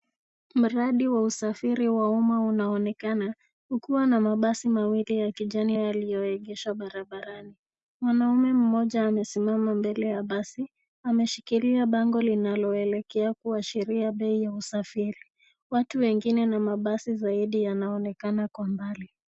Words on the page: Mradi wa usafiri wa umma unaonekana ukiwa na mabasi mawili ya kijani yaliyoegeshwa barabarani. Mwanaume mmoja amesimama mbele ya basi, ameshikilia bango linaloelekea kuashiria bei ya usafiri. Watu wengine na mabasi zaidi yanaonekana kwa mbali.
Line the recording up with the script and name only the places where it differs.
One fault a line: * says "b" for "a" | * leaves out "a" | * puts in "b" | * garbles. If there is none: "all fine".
all fine